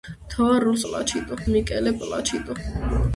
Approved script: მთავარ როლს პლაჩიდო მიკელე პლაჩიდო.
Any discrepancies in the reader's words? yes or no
no